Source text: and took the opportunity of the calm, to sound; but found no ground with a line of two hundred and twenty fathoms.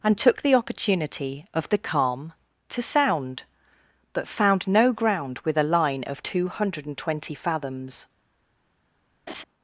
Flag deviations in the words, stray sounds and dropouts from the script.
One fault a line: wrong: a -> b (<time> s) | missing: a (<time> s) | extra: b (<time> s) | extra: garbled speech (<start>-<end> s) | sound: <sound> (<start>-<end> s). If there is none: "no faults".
sound: laugh (9.3-9.4 s)